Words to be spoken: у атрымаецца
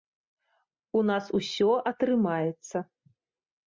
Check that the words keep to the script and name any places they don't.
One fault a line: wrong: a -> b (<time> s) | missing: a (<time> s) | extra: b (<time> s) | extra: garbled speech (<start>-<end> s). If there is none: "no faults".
extra: нас усё (1.1 s)